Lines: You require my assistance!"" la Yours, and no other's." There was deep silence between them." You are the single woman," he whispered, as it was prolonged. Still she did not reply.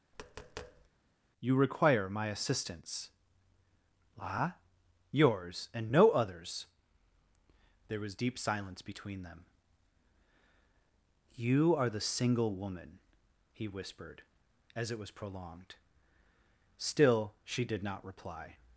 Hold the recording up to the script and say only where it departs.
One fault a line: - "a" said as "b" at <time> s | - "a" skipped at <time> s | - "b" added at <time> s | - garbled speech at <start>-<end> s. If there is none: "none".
none